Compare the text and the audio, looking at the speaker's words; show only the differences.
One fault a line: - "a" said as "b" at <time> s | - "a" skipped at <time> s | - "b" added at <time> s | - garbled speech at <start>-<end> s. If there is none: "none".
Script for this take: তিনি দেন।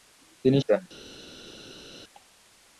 none